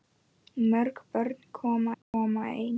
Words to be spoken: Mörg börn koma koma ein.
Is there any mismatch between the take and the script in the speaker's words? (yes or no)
no